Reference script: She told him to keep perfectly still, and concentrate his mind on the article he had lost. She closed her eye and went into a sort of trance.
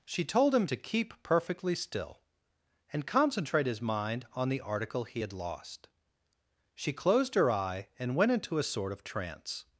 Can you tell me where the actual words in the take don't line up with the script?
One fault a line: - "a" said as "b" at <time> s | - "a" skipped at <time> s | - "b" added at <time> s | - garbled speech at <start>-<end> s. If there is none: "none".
none